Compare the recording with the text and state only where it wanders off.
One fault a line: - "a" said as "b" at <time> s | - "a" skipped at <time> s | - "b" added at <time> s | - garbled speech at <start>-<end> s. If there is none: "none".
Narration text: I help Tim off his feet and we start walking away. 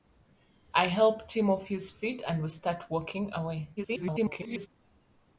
- garbled speech at 3.8-4.7 s